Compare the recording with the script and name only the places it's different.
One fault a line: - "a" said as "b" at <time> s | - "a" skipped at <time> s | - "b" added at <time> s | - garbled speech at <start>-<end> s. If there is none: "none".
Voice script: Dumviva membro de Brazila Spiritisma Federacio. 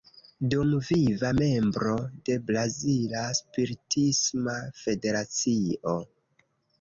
none